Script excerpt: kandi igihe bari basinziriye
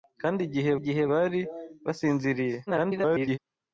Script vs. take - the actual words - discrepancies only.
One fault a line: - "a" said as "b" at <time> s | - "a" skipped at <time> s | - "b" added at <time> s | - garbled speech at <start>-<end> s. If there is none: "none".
- "igihe" added at 0.8 s
- garbled speech at 2.7-3.4 s